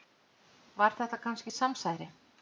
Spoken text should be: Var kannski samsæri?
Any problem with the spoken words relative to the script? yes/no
yes